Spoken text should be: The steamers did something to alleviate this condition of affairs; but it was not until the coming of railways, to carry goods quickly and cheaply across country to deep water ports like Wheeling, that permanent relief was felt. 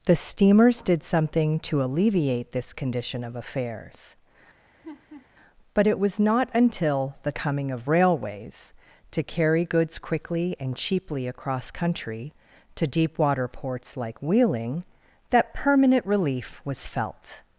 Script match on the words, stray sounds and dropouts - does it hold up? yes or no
no